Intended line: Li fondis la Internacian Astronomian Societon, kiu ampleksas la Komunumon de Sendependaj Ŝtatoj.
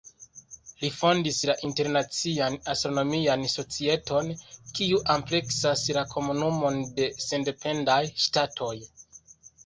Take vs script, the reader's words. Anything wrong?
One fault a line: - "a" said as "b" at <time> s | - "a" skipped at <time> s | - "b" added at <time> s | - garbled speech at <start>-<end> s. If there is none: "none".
none